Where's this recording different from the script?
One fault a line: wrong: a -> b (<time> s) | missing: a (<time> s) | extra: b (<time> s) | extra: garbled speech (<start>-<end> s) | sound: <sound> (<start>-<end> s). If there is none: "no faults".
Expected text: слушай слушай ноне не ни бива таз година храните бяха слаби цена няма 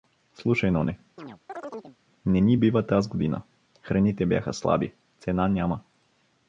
missing: слушай (0.7 s)
sound: chirp (1.2-2.0 s)